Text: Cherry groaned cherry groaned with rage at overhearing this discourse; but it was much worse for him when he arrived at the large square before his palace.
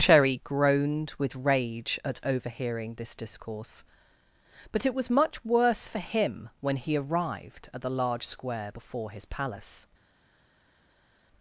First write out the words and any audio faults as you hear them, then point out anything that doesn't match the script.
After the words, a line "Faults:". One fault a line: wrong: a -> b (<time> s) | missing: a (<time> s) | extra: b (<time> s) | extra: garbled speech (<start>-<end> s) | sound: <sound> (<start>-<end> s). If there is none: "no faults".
Cherry groaned with rage at overhearing this discourse; but it was much worse for him when he arrived at the large square before his palace.
Faults:
missing: cherry groaned (1.1 s)